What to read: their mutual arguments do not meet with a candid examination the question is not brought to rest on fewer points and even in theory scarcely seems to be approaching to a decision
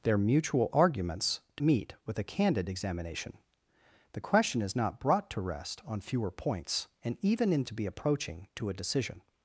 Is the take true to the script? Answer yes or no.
no